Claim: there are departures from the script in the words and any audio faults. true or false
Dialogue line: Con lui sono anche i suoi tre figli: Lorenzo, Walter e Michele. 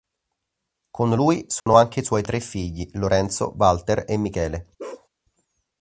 true